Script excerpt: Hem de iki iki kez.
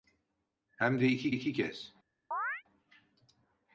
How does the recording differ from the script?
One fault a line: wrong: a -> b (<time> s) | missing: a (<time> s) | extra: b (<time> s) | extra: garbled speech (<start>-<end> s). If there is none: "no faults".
no faults